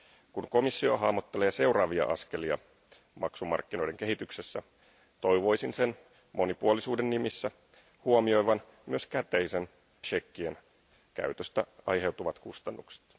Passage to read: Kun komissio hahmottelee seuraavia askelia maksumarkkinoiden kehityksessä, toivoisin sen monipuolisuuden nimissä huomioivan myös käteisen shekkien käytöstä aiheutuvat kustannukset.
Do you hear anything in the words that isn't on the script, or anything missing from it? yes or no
no